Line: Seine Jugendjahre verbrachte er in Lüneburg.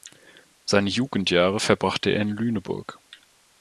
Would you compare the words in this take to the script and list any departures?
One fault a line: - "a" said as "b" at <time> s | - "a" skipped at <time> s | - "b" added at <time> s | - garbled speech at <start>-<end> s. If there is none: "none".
none